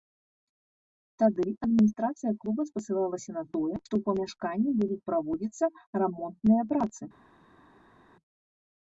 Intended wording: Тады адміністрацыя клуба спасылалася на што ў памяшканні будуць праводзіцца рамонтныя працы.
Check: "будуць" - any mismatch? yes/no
no